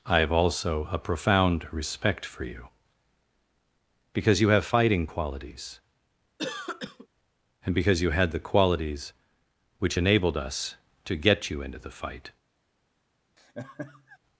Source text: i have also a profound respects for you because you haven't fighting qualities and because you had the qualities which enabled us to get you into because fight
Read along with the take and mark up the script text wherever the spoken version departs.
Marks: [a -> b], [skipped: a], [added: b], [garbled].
i have also a profound [respects -> respect] for you because you [haven't -> have] fighting qualities and because you had the qualities which enabled us to get you into [because -> the] fight